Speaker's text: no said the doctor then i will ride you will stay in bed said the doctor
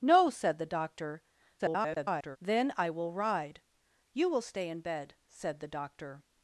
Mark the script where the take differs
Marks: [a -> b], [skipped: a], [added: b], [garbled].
no said the doctor [garbled] then i will ride you will stay in bed said the doctor